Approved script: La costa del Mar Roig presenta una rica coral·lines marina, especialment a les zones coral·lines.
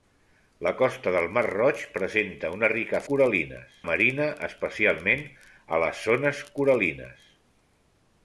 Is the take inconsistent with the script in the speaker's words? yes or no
no